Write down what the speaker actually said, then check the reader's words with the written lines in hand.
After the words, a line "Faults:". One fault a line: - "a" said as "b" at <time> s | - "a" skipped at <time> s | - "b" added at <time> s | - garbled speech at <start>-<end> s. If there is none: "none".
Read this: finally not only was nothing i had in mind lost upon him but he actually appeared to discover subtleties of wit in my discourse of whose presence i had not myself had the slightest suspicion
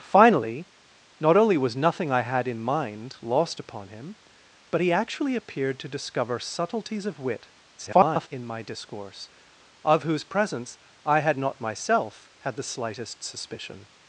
finally not only was nothing i had in mind lost upon him but he actually appeared to discover subtleties of wit [garbled] in my discourse of whose presence i had not myself had the slightest suspicion
Faults:
- garbled speech at 7.8-8.3 s